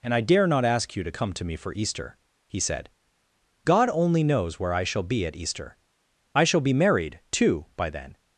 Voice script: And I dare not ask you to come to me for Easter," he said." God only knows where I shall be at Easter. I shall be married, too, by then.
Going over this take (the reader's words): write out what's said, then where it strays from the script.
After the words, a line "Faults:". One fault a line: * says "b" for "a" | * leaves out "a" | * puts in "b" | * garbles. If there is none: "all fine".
And I dare not ask you to come to me for Easter," he said." God only knows where I shall be at Easter. I shall be married, too, by then.
Faults:
all fine